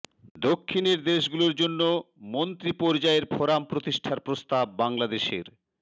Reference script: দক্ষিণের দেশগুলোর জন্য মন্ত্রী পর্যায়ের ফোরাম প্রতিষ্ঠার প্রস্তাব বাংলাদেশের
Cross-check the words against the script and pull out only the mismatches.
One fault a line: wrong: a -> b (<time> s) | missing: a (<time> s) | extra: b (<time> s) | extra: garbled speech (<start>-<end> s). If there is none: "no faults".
no faults